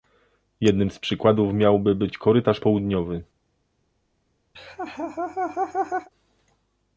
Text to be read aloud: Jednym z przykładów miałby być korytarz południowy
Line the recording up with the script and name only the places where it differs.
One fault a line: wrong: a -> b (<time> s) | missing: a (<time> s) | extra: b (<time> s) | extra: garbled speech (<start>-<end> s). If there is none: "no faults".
no faults